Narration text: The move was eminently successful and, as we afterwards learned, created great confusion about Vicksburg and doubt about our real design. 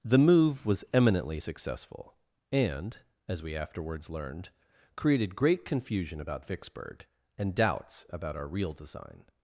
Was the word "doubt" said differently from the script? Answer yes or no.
yes